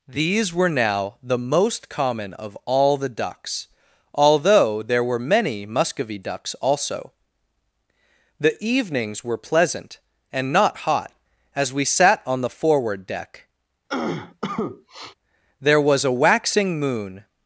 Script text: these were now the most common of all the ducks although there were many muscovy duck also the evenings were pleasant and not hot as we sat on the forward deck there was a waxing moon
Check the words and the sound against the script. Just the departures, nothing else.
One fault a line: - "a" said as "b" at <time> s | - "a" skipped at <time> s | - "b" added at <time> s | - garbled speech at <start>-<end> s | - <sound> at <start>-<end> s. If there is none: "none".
- "duck" said as "ducks" at 6.2 s
- cough at 13.9-15.1 s